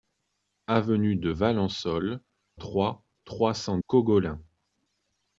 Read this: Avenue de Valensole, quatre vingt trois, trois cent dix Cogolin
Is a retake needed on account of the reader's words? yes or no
yes